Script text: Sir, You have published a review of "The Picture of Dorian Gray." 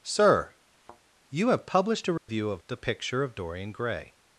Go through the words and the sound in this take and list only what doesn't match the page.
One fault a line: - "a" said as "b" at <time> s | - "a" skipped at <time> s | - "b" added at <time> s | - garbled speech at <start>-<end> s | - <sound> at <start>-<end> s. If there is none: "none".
- thud at 0.8-1.0 s
- dropout at 2.2-2.3 s